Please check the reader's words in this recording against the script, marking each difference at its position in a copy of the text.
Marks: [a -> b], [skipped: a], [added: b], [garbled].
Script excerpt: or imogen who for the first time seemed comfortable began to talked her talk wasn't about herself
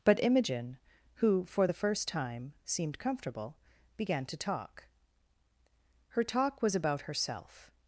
[or -> but] imogen who for the first time seemed comfortable began to [talked -> talk] her talk [wasn't -> was] about herself